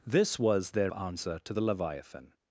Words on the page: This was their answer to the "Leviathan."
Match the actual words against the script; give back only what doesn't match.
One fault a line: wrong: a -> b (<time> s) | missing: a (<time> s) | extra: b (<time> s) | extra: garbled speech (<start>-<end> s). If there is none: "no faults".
no faults